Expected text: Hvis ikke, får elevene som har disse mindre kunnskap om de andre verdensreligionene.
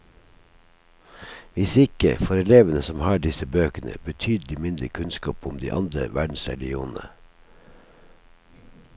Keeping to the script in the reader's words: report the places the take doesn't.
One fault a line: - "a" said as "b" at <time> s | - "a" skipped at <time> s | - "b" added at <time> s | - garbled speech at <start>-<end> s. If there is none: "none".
- "bøkene betydelig" added at 3.5 s